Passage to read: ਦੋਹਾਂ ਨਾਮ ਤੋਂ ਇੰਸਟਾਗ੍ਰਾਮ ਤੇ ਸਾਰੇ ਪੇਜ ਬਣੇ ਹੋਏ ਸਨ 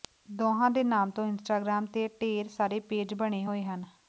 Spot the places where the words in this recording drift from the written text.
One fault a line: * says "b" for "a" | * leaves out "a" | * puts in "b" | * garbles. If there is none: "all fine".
* puts in "ਦੇ"
* puts in "ਢੇਰ"
* says "ਹਨ" for "ਸਨ"